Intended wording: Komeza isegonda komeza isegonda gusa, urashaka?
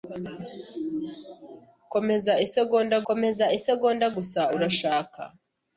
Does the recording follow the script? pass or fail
pass